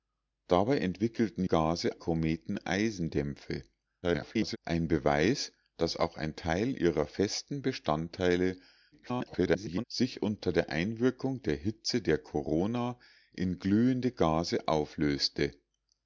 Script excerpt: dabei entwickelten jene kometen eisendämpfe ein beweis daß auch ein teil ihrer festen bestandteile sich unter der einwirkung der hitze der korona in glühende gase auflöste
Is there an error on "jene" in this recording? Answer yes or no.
yes